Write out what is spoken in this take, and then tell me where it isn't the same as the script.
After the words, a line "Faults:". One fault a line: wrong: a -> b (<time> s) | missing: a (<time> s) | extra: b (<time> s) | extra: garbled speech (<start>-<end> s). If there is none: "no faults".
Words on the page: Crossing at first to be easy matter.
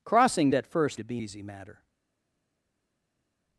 Crossing at first to be easy matter.
Faults:
no faults